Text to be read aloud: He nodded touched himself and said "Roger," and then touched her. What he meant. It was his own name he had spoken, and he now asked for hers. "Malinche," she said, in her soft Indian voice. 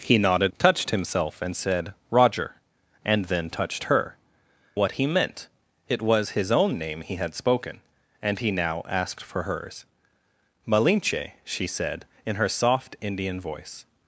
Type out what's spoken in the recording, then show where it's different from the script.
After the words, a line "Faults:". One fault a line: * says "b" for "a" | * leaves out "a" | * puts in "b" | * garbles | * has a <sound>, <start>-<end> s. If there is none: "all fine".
He nodded touched himself and said "Roger," and then touched her. What he meant. It was his own name he had spoken, and he now asked for hers. "Malinche," she said, in her soft Indian voice.
Faults:
all fine